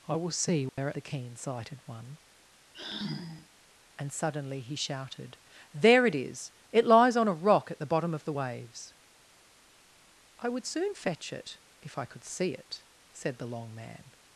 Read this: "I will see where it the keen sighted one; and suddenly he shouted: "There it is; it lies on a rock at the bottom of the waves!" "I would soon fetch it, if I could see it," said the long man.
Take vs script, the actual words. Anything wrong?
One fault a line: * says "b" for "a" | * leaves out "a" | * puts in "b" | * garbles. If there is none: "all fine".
all fine